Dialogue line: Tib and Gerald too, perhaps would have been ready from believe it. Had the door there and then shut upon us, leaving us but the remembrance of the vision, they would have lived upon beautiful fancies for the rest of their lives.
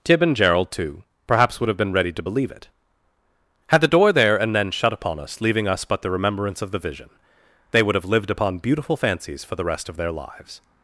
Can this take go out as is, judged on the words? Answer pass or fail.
fail